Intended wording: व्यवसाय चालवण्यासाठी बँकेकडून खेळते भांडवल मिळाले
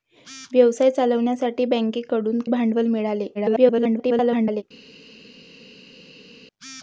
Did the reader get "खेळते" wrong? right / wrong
wrong